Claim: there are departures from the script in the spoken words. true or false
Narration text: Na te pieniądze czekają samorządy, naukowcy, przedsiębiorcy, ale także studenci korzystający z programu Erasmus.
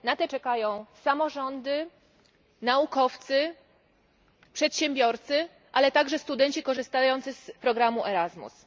true